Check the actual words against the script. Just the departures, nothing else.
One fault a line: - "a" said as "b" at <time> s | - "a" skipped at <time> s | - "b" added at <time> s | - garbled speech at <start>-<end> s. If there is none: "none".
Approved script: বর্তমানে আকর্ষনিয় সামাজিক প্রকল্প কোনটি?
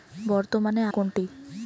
- "আকর্ষনিয় সামাজিক প্রকল্প" skipped at 0.8 s